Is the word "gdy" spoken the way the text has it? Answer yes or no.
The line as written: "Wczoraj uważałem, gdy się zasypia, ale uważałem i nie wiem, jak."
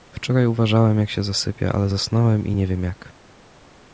no